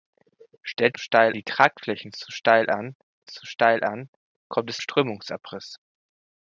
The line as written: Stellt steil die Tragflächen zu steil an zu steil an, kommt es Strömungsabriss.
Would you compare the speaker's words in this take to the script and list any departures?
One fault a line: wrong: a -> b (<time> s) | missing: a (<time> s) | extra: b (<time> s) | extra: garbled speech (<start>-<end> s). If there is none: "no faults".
no faults